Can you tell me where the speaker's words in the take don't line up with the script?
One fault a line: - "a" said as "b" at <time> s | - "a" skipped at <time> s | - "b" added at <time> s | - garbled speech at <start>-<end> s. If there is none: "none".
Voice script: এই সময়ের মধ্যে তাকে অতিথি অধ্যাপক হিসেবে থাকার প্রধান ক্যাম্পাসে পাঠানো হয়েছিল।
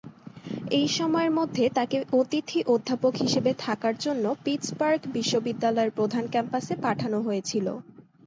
- "জন্য পিটসবার্গ বিশ্ববিদ্যালয়ের" added at 4.0 s